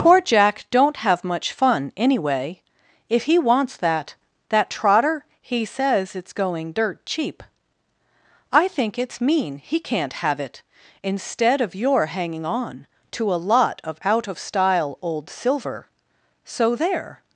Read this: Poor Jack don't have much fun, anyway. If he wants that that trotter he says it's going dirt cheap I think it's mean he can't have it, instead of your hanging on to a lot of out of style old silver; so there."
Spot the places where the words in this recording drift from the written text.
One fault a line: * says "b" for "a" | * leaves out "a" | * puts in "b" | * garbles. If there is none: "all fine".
all fine